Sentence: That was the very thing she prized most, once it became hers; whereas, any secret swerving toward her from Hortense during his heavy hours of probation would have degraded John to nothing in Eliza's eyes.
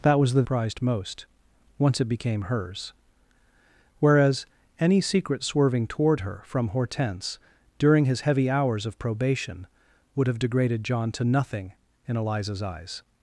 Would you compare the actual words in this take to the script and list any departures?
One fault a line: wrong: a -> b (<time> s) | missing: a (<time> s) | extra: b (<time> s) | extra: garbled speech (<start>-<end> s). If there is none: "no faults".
missing: very thing she (0.4 s)